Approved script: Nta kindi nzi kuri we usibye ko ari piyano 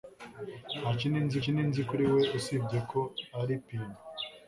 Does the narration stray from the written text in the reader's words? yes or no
yes